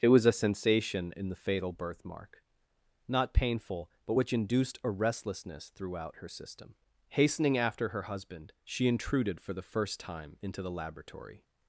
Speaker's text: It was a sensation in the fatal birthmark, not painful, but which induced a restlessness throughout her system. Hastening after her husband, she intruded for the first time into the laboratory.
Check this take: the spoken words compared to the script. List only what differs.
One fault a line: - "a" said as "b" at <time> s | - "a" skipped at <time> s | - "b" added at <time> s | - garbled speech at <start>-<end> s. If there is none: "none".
none